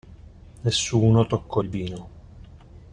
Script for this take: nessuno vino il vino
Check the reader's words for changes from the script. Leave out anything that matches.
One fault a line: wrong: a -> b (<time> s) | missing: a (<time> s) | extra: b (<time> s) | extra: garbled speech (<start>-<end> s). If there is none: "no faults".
wrong: vino -> toccò (1.3 s)